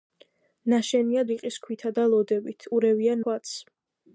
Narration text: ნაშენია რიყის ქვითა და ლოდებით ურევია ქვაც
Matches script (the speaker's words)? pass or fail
pass